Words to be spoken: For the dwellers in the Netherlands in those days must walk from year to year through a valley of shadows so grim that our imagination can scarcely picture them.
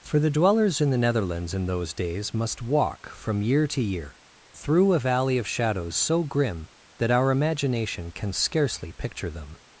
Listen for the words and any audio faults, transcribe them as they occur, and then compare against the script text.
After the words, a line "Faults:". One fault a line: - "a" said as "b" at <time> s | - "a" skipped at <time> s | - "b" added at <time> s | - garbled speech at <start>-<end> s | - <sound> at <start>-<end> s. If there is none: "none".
For the dwellers in the Netherlands in those days must walk from year to year through a valley of shadows so grim that our imagination can scarcely picture them.
Faults:
none